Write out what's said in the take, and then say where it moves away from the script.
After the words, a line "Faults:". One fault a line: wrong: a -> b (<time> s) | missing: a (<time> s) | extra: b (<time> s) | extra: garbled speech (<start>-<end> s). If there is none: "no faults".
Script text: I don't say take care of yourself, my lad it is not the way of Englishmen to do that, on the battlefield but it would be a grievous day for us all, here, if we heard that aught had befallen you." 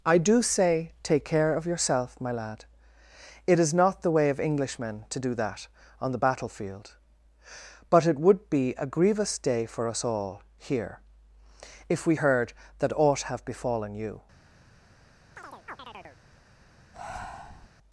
I do say take care of yourself, my lad it is not the way of Englishmen to do that, on the battlefield but it would be a grievous day for us all, here, if we heard that aught have befallen you."
Faults:
wrong: don't -> do (0.2 s)
wrong: had -> have (13.2 s)